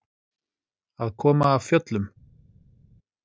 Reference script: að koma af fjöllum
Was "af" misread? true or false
false